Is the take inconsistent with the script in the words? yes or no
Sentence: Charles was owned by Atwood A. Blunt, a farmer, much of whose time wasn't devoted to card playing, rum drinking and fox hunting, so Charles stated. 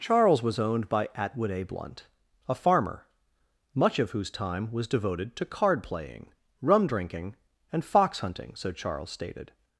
yes